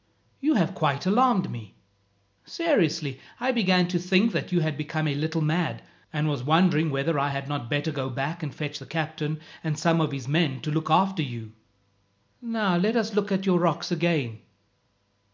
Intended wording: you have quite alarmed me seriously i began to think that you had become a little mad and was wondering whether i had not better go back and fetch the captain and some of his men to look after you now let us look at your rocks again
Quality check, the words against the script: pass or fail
pass